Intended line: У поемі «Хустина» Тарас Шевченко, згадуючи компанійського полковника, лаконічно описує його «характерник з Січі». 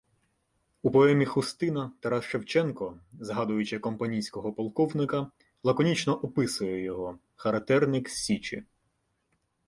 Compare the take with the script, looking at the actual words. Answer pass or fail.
pass